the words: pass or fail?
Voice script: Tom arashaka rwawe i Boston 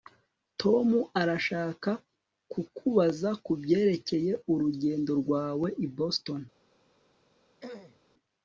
fail